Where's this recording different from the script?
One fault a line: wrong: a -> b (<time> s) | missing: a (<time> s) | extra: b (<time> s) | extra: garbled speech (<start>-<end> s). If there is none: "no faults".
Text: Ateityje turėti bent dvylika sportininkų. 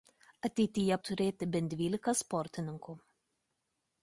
no faults